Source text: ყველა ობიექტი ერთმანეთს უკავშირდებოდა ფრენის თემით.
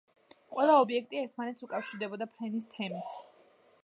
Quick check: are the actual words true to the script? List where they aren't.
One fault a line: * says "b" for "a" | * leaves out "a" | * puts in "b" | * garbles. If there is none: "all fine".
all fine